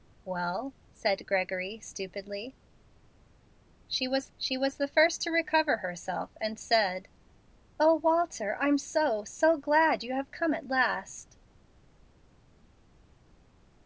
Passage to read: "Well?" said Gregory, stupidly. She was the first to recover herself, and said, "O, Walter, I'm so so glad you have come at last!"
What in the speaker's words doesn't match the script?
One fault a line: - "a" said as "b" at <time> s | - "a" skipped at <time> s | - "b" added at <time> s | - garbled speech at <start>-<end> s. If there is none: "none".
- "she was" added at 4.4 s